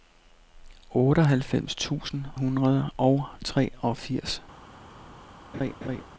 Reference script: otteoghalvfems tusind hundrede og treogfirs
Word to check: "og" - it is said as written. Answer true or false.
true